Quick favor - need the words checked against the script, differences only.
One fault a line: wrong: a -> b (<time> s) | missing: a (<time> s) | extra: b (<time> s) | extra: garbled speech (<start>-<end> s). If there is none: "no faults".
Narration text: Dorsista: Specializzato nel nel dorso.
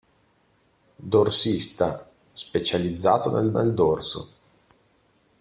no faults